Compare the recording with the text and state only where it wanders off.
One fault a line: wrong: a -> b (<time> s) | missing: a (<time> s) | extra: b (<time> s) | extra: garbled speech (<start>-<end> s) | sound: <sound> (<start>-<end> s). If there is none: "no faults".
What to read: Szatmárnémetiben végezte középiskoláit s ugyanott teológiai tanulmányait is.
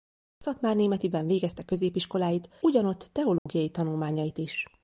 missing: s (2.5 s)
sound: dropout (3.4-3.5 s)